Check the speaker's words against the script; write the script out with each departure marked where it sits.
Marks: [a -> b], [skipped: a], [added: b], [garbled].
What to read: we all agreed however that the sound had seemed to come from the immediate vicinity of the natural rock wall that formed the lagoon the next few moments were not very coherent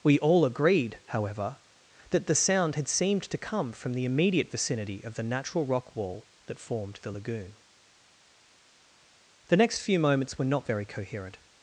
we all agreed however that the sound had seemed to come from the immediate vicinity of the natural rock wall that formed the lagoon the next few moments were not very coherent